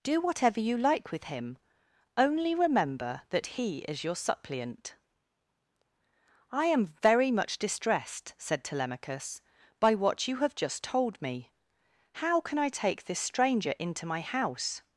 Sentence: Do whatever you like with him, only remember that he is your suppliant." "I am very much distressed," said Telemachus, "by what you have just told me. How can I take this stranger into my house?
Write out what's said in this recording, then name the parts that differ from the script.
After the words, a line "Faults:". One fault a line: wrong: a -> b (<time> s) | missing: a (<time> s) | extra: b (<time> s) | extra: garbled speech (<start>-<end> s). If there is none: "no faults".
Do whatever you like with him, only remember that he is your suppliant." "I am very much distressed," said Telemachus, "by what you have just told me. How can I take this stranger into my house?
Faults:
no faults